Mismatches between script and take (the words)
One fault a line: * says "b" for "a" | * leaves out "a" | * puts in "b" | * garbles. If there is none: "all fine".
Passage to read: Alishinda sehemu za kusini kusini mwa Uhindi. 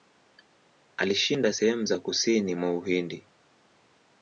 * leaves out "kusini"